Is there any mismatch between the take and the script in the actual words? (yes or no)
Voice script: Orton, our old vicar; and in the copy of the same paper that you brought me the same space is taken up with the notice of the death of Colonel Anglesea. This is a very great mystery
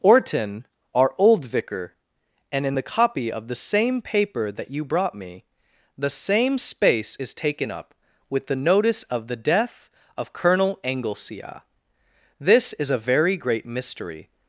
no